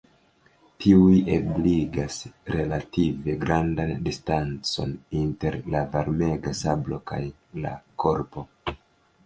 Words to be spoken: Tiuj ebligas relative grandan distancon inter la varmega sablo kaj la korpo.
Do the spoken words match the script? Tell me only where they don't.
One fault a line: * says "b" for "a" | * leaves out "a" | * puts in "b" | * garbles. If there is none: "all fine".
all fine